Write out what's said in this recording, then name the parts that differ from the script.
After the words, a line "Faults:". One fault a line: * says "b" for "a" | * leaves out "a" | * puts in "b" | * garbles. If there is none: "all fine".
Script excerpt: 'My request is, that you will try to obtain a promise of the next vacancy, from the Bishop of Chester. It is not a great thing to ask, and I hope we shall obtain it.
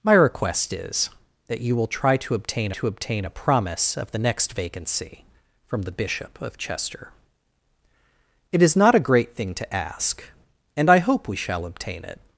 'My request is, that you will try to obtain to obtain a promise of the next vacancy, from the Bishop of Chester. It is not a great thing to ask, and I hope we shall obtain it.
Faults:
* puts in "to obtain"